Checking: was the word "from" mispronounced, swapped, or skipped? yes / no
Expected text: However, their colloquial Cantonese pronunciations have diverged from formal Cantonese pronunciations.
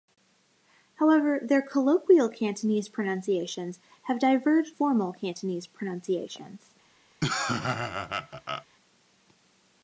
yes